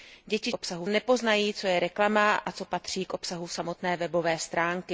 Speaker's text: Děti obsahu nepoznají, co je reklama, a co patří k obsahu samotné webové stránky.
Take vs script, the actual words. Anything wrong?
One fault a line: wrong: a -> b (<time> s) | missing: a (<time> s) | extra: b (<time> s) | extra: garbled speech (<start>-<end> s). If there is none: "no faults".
no faults